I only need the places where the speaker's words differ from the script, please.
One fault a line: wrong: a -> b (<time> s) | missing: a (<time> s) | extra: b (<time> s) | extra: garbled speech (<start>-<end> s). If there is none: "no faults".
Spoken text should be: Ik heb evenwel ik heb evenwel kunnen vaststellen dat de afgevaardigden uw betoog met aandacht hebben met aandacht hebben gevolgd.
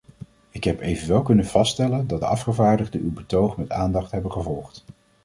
missing: ik heb evenwel (1.2 s)
missing: met aandacht hebben (4.3 s)